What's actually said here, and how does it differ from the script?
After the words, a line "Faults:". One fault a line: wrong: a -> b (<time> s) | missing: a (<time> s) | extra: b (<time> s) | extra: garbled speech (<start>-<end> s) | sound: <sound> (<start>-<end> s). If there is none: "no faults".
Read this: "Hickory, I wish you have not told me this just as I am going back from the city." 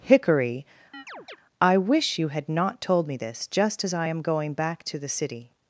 "Hickory, I wish you had not told me this just as I am going back to the city."
Faults:
sound: chirp (0.9-1.4 s)
wrong: have -> had (2.3 s)
wrong: from -> to (4.8 s)